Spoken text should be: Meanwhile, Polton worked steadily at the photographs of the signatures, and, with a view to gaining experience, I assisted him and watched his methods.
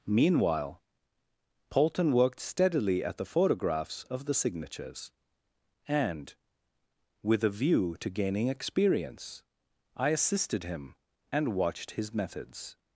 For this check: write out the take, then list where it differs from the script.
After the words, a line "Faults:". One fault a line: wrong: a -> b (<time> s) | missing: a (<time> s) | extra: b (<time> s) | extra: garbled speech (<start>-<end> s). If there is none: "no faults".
Meanwhile, Polton worked steadily at the photographs of the signatures, and, with a view to gaining experience, I assisted him and watched his methods.
Faults:
no faults